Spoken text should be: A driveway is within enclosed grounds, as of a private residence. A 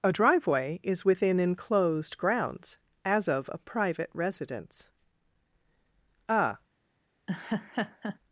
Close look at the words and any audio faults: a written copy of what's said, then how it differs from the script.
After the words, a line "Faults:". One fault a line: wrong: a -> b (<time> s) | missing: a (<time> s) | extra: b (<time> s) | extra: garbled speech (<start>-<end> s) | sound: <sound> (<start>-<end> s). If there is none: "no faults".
A driveway is within enclosed grounds, as of a private residence. A
Faults:
sound: laugh (7.3-8.2 s)